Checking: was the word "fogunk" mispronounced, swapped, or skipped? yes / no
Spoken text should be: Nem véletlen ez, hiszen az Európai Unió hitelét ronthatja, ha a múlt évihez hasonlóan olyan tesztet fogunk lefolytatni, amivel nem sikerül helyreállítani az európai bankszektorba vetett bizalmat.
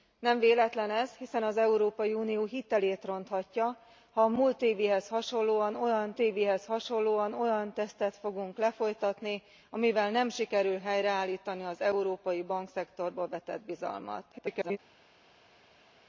no